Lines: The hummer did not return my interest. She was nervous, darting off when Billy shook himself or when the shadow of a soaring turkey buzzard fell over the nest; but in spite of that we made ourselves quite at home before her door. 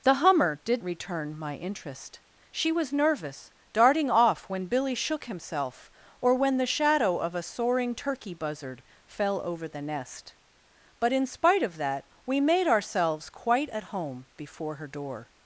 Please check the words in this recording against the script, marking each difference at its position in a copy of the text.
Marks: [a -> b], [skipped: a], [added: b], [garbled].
The hummer did [skipped: not] return my interest. She was nervous, darting off when Billy shook himself or when the shadow of a soaring turkey buzzard fell over the nest; but in spite of that we made ourselves quite at home before her door.